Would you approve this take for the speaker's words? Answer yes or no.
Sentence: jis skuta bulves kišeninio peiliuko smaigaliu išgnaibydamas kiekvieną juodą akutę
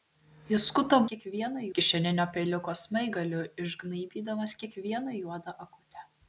no